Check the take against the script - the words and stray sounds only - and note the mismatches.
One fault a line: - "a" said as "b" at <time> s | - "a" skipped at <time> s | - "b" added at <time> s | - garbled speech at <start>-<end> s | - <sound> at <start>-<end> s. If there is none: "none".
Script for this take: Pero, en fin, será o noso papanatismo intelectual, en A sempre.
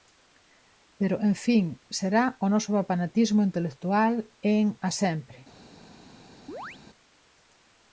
- chirp at 6.5-6.8 s